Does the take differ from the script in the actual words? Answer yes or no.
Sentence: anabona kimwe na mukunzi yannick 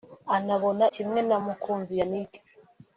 no